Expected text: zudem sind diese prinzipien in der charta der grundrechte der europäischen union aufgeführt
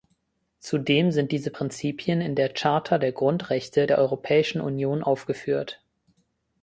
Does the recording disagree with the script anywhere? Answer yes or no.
no